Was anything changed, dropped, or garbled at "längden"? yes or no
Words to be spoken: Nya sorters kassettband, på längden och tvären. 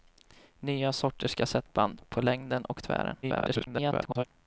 no